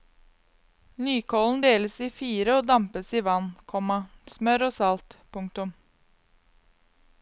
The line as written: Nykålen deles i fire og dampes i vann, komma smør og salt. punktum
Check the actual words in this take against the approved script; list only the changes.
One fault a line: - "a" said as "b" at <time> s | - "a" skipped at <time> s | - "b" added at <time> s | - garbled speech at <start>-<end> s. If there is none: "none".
none